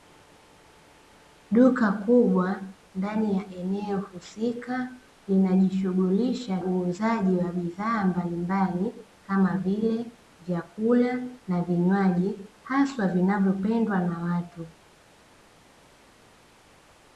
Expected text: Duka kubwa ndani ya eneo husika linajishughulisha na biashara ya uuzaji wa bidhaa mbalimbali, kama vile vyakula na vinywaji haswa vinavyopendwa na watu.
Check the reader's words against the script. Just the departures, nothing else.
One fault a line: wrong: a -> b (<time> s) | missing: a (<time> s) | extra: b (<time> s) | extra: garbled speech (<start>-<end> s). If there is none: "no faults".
missing: na biashara ya (6.6 s)